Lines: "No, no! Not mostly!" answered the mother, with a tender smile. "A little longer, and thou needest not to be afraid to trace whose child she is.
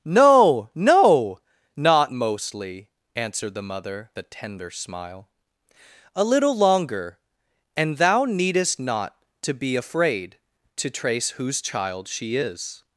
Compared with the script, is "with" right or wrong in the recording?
wrong